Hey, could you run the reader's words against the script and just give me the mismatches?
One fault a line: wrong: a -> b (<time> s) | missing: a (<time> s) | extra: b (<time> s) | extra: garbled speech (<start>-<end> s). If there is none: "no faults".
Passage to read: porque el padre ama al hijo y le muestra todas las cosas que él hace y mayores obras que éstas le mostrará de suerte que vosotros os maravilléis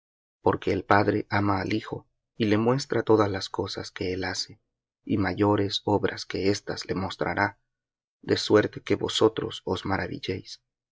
no faults